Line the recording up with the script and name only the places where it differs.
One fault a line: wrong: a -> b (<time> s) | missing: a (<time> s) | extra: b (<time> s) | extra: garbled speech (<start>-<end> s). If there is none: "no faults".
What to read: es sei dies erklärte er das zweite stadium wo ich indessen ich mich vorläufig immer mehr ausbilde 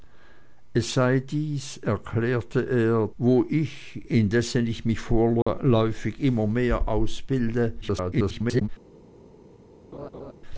missing: das zweite stadium (3.1 s)
extra: garbled speech (7.8-8.7 s)